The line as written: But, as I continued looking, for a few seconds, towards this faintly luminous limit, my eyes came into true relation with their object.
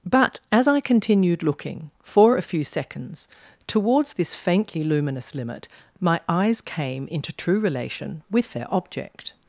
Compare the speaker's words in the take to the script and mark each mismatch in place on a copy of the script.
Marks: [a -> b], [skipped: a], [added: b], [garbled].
But, as I continued looking, for a few seconds, towards this faintly luminous limit, my eyes came into true relation with their object.